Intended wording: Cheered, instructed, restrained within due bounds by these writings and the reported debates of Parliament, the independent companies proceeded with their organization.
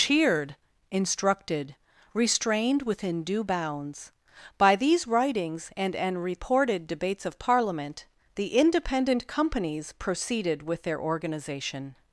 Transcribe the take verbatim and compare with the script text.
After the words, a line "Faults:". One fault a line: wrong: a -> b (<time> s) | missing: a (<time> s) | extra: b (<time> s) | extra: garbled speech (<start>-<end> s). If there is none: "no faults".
Cheered, instructed, restrained within due bounds by these writings and an reported debates of Parliament, the independent companies proceeded with their organization.
Faults:
wrong: the -> an (5.9 s)